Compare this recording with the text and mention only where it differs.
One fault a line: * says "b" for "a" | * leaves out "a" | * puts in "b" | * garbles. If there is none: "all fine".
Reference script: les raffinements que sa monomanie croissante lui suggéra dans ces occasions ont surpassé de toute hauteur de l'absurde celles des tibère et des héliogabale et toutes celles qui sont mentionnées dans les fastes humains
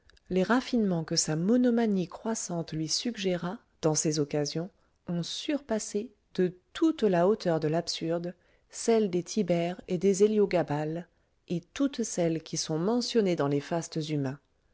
* puts in "la"